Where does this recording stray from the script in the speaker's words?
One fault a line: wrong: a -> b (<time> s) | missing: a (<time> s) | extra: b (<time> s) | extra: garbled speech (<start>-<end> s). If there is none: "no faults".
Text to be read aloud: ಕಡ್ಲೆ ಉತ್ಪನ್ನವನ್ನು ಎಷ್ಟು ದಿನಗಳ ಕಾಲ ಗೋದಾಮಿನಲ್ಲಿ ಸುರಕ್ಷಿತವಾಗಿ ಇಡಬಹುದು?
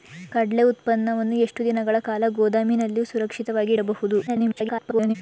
extra: garbled speech (4.3-5.2 s)